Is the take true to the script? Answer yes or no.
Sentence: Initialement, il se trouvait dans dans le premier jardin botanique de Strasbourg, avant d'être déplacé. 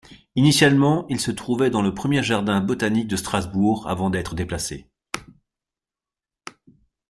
no